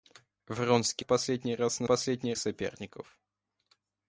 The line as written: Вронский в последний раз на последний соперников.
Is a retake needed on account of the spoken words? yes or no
no